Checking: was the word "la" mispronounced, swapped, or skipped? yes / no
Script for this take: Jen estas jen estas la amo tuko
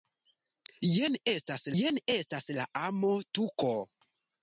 no